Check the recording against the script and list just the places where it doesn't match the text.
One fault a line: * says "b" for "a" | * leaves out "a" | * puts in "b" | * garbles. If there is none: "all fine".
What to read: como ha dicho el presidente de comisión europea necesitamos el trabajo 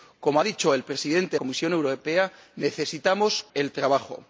all fine